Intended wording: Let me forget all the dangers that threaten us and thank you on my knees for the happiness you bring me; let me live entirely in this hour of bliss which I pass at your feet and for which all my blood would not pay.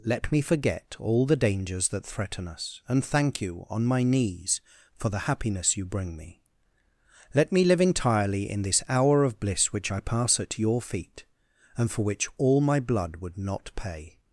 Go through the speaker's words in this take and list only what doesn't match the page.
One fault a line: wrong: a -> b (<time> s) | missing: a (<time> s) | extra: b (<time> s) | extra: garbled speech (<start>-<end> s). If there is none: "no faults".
no faults